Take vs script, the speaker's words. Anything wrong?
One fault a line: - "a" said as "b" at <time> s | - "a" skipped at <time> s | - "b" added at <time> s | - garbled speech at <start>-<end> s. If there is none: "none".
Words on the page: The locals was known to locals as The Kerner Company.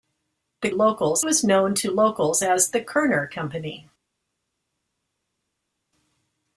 none